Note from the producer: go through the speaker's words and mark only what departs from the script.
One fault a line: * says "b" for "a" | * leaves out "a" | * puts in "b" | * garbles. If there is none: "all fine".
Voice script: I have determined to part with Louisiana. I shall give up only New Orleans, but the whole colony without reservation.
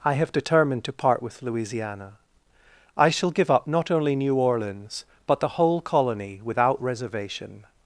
* puts in "not"